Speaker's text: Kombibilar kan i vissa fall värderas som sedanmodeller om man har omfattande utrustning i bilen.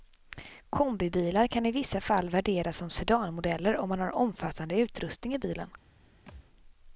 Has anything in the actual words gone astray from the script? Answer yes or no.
no